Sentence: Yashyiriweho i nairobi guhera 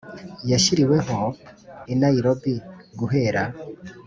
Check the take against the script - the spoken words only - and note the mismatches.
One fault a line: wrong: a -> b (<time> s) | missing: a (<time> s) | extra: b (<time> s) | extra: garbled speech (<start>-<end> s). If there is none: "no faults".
no faults